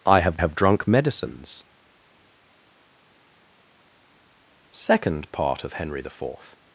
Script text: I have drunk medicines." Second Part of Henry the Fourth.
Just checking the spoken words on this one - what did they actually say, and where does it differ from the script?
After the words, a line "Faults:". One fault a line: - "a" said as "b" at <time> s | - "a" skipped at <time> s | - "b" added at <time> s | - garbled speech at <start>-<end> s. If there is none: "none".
I have have drunk medicines." Second Part of Henry the Fourth.
Faults:
- "have" added at 0.4 s